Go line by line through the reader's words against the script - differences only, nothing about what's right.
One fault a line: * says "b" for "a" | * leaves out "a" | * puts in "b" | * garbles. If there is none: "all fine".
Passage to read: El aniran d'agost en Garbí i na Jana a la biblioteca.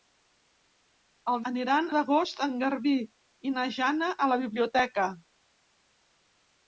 all fine